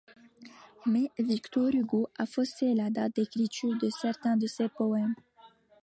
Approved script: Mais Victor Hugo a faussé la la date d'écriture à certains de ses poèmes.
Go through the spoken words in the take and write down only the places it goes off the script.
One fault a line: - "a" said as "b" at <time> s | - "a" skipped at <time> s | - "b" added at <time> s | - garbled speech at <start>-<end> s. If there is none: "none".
- "la" skipped at 2.9 s
- "à" said as "de" at 3.8 s